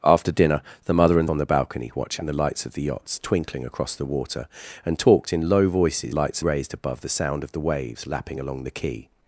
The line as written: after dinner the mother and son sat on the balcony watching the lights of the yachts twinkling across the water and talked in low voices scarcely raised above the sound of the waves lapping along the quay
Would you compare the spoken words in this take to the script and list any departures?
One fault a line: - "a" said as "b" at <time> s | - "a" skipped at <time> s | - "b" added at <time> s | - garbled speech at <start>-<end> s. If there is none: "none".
- "son sat" skipped at 1.3 s
- "scarcely" said as "lights" at 6.1 s